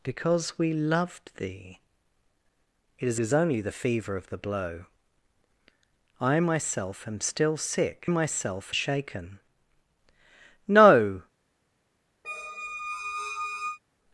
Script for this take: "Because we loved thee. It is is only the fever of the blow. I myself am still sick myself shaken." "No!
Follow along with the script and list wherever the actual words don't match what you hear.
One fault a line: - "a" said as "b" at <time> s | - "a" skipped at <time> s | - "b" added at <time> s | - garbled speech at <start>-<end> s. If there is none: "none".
none